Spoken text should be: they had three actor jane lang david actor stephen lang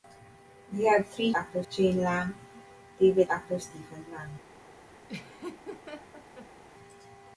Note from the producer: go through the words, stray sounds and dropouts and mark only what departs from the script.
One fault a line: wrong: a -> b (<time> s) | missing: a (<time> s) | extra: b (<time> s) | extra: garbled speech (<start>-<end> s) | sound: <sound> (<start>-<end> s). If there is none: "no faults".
sound: laugh (5.1-6.6 s)